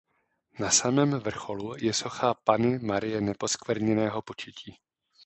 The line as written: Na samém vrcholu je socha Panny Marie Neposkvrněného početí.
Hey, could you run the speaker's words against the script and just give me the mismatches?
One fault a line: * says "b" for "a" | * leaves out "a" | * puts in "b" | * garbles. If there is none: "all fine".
all fine